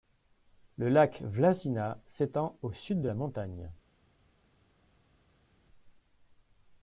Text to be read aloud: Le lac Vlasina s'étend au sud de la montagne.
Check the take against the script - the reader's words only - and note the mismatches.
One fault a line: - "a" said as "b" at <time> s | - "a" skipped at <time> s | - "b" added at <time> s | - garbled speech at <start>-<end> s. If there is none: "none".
none